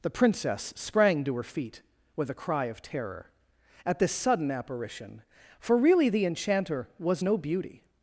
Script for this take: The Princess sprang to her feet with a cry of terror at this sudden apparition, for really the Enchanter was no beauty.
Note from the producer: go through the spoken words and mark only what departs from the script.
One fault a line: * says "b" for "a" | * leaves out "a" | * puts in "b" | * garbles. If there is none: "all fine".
all fine